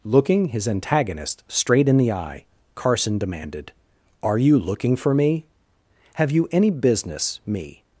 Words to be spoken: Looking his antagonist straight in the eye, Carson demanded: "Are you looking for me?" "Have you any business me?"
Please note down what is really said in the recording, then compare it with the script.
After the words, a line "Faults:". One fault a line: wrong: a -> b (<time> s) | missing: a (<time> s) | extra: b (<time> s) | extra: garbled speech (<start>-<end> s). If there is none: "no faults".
Looking his antagonist straight in the eye, Carson demanded: "Are you looking for me?" "Have you any business me?"
Faults:
no faults